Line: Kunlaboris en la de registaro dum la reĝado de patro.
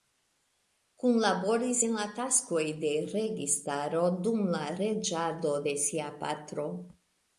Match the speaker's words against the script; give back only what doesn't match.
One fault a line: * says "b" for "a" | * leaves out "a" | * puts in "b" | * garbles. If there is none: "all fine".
* puts in "taskoj"
* puts in "sia"